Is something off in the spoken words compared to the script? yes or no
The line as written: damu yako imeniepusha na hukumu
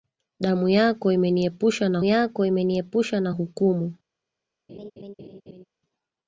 yes